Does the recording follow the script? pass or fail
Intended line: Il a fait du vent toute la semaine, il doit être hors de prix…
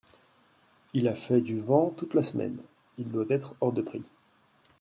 pass